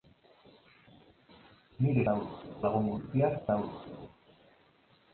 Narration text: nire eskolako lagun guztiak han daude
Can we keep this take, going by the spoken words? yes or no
no